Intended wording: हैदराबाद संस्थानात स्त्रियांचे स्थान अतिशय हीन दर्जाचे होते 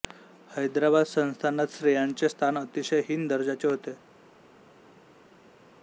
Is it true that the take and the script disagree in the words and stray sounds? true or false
false